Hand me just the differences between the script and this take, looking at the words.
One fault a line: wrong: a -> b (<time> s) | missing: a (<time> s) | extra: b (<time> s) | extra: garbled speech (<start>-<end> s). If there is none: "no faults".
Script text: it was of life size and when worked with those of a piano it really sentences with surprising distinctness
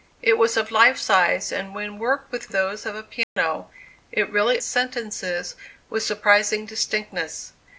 no faults